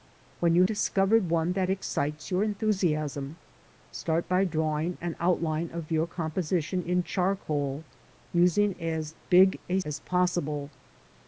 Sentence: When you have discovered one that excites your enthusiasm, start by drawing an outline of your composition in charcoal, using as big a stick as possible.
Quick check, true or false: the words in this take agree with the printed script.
false